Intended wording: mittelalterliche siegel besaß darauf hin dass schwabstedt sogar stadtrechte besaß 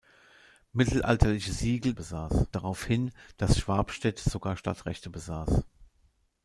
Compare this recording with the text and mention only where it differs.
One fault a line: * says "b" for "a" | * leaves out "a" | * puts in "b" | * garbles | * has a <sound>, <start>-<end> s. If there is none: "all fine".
all fine